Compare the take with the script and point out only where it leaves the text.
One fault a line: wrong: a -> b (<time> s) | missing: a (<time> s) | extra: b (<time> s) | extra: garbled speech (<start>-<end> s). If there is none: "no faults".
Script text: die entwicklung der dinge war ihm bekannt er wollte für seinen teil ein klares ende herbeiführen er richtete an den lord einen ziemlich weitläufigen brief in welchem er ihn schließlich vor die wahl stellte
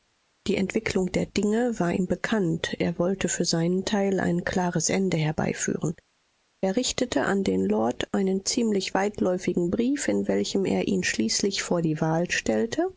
no faults